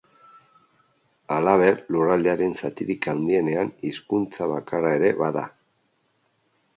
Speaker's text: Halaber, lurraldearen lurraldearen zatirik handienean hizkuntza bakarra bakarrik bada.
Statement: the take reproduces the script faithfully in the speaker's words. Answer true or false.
false